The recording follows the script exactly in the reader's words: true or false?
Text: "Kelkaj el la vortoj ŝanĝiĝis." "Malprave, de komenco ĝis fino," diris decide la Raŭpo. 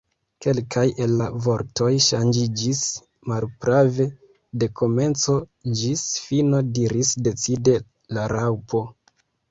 true